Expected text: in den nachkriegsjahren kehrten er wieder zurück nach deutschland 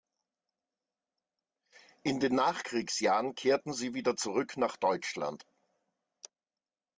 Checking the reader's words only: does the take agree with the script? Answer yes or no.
no